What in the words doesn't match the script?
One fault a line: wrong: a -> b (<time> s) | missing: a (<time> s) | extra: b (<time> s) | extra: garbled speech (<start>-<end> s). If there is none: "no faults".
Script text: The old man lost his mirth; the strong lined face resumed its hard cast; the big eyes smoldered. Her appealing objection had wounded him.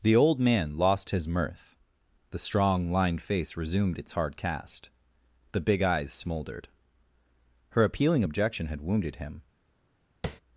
no faults